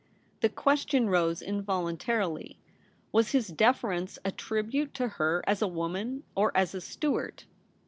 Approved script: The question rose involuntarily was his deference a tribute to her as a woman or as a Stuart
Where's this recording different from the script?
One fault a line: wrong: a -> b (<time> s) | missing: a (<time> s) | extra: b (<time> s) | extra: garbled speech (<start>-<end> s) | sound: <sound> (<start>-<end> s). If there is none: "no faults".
no faults